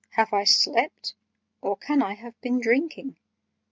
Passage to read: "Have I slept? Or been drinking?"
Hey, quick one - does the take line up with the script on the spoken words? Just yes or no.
no